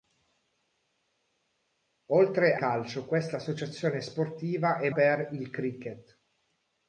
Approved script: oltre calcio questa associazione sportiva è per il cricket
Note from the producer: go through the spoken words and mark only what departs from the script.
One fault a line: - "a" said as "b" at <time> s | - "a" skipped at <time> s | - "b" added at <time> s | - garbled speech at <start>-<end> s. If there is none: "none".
none